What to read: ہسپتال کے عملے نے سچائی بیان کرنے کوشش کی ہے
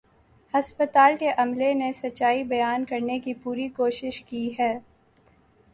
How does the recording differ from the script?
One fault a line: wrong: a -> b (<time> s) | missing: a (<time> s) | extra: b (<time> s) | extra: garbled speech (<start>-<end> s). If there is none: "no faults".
extra: کی پوری (3.2 s)